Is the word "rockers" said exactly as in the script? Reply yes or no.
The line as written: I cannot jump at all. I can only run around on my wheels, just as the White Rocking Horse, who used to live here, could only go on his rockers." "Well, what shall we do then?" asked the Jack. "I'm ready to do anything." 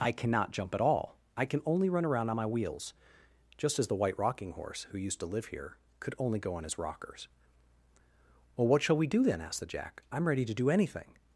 yes